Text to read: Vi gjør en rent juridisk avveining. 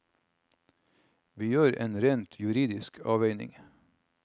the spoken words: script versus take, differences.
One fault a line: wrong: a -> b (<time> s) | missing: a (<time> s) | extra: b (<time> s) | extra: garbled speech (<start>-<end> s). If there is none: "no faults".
no faults